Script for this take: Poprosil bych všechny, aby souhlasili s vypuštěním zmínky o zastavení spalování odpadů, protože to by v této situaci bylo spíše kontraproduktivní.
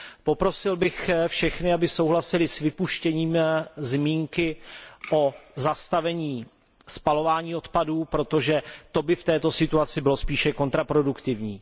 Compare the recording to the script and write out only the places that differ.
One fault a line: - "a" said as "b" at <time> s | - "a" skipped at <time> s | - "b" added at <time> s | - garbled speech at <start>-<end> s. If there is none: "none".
none